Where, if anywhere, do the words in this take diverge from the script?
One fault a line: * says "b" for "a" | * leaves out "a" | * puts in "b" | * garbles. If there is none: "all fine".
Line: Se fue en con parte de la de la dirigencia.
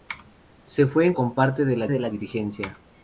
all fine